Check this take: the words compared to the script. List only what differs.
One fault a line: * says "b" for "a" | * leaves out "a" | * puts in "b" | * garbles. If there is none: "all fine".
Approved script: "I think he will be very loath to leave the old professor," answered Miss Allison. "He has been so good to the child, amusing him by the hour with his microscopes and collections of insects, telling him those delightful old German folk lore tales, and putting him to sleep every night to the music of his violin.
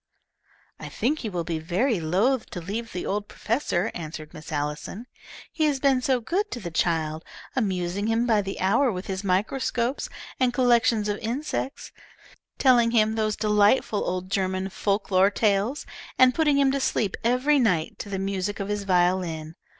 all fine